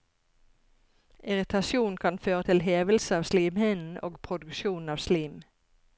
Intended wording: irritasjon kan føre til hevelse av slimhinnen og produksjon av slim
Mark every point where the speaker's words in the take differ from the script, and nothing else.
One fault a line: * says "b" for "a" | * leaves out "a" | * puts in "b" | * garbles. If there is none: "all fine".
all fine